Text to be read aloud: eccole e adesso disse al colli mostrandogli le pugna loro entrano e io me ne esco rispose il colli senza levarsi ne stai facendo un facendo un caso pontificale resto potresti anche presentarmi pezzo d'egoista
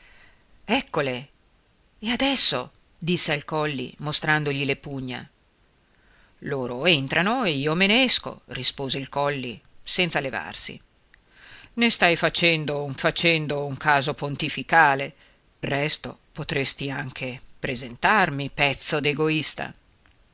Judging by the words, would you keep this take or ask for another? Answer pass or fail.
pass